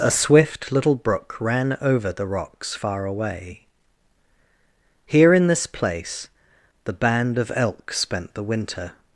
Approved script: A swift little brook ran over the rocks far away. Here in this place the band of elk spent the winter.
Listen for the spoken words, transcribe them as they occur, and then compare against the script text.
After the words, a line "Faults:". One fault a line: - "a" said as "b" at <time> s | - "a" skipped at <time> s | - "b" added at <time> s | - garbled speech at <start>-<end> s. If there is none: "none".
A swift little brook ran over the rocks far away. Here in this place the band of elk spent the winter.
Faults:
none